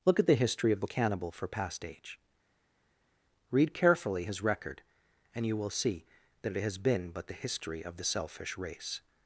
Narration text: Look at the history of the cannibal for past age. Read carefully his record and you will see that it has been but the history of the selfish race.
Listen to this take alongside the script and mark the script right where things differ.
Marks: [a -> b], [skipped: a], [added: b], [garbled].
Look at the history of the cannibal for past age. Read carefully his record and you will see that it has been but the history of the selfish race.